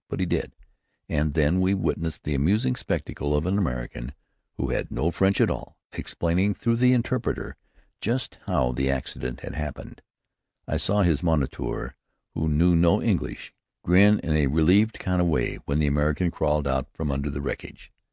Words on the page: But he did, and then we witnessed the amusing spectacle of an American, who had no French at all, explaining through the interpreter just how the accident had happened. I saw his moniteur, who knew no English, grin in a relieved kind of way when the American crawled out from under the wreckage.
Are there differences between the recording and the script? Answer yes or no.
no